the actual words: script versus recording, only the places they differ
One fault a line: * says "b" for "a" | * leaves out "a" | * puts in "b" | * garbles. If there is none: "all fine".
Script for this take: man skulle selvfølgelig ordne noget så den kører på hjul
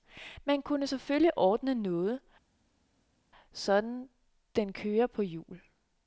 * says "kunne" for "skulle"